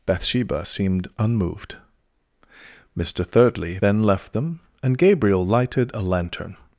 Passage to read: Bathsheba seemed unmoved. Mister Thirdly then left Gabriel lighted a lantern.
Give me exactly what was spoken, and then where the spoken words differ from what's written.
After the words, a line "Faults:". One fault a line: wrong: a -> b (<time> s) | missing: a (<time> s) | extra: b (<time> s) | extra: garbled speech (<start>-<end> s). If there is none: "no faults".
Bathsheba seemed unmoved. Mister Thirdly then left them, and Gabriel lighted a lantern.
Faults:
extra: them and (4.3 s)